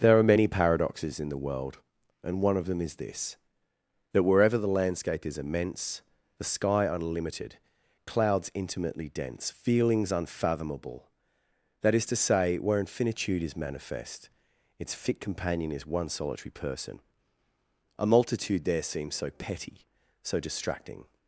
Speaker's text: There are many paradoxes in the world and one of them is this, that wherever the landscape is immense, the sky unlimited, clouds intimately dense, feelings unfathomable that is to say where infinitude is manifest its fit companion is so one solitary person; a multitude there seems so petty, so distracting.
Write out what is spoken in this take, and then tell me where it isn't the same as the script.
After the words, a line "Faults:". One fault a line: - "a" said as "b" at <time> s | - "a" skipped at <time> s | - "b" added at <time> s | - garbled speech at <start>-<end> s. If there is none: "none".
There are many paradoxes in the world and one of them is this, that wherever the landscape is immense, the sky unlimited, clouds intimately dense, feelings unfathomable that is to say where infinitude is manifest its fit companion is one solitary person; a multitude there seems so petty, so distracting.
Faults:
- "so" skipped at 15.8 s